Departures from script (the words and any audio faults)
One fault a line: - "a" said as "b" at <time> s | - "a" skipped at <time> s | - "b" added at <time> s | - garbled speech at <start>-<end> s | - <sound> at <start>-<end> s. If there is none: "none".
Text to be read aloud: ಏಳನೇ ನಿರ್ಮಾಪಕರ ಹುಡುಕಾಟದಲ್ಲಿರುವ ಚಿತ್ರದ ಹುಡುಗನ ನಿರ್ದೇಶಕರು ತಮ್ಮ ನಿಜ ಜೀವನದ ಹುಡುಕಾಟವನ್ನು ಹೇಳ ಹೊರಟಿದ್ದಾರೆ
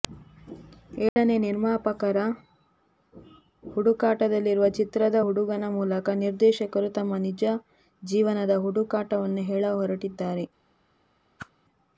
- dropout at 1.1-1.2 s
- "ಮೂಲಕ" added at 5.7 s
- whoosh at 11.4-11.5 s